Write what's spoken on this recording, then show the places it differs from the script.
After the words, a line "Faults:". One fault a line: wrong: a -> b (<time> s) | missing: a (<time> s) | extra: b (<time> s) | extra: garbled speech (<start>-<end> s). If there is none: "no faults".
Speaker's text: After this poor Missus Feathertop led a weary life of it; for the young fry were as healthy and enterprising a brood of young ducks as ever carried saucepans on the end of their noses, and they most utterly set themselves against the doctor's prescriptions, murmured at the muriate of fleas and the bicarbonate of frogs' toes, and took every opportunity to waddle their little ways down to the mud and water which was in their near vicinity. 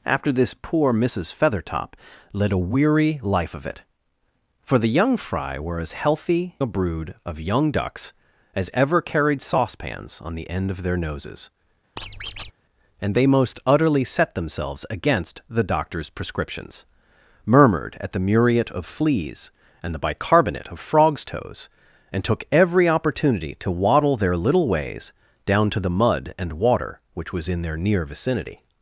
After this poor Missus Feathertop led a weary life of it; for the young fry were as healthy a brood of young ducks as ever carried saucepans on the end of their noses, and they most utterly set themselves against the doctor's prescriptions, murmured at the muriate of fleas and the bicarbonate of frogs' toes, and took every opportunity to waddle their little ways down to the mud and water which was in their near vicinity.
Faults:
missing: and enterprising (6.6 s)